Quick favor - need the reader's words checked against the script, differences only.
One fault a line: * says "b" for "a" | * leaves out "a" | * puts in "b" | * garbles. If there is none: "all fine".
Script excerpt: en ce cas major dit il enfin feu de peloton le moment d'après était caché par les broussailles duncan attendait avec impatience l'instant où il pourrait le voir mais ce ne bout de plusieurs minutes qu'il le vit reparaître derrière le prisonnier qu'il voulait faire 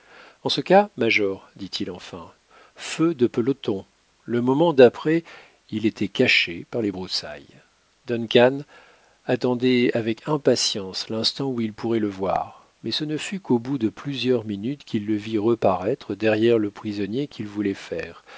* puts in "il"
* puts in "fut qu'au"